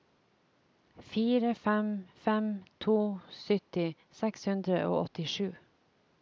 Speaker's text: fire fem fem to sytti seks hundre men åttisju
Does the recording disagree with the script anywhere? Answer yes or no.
yes